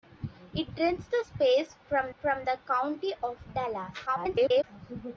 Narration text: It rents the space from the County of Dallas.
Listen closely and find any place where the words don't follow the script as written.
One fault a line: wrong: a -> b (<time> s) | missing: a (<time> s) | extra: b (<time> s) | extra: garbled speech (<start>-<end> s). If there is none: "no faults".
extra: from (2.2 s)
extra: garbled speech (4.1-4.6 s)